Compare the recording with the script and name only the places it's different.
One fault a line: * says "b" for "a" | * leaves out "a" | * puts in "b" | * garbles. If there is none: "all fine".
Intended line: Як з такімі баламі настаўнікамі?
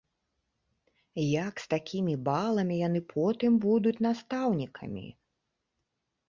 * puts in "яны потым будуць"